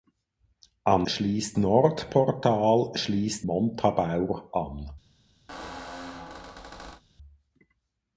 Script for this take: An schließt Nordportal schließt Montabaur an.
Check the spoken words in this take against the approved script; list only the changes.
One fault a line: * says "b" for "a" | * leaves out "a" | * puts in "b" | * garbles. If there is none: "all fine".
all fine